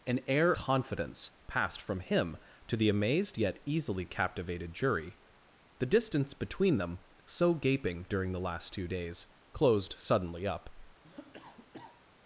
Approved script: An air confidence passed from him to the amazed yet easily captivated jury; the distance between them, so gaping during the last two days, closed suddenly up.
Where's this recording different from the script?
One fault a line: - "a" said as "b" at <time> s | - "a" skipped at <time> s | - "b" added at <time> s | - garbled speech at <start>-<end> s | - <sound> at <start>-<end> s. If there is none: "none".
- cough at 11.0-12.1 s